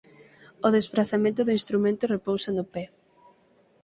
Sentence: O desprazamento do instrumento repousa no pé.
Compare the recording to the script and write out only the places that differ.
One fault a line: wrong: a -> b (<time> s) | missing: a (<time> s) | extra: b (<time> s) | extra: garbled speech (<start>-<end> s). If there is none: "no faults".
no faults